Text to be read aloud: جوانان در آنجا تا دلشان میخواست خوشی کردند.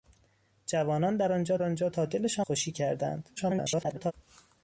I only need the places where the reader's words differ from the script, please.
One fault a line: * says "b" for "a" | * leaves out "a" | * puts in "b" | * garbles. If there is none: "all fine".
* puts in "آنجا"
* leaves out "میخواست"
* garbles